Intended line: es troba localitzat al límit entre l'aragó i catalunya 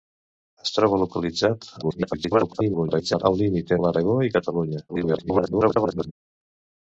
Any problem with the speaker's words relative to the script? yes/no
yes